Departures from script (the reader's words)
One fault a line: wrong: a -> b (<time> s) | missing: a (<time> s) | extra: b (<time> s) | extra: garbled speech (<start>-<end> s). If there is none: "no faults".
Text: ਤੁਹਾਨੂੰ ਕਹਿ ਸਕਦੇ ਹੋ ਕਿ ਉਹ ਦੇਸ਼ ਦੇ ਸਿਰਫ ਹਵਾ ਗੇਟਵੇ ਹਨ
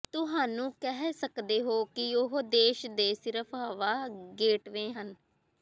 no faults